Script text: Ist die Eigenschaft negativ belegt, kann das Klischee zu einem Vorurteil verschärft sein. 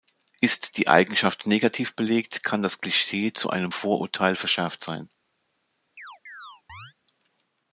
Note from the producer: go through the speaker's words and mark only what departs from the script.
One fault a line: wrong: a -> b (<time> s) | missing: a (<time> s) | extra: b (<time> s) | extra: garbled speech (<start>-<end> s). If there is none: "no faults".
no faults